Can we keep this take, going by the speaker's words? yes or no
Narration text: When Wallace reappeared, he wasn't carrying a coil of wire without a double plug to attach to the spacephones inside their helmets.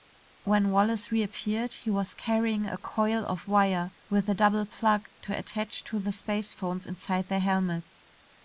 no